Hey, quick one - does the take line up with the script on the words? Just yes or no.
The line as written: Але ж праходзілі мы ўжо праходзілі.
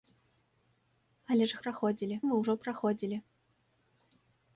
yes